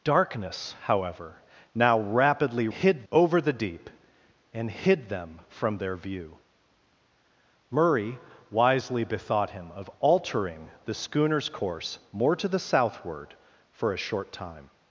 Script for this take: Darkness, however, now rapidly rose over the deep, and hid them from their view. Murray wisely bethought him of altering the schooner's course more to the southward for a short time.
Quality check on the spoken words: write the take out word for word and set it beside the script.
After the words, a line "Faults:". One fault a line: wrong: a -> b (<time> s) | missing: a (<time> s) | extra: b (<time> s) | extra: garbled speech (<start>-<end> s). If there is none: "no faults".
Darkness, however, now rapidly hid over the deep, and hid them from their view. Murray wisely bethought him of altering the schooner's course more to the southward for a short time.
Faults:
wrong: rose -> hid (2.7 s)